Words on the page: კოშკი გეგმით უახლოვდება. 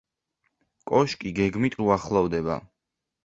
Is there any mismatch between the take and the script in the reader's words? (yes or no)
no